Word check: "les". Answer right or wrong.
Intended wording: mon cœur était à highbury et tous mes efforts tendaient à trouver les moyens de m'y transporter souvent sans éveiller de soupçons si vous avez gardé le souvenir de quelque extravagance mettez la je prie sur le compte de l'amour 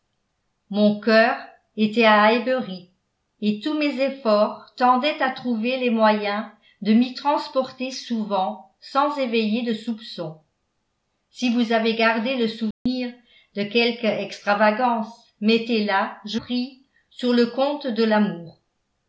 right